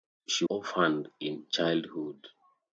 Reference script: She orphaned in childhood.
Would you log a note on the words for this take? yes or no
no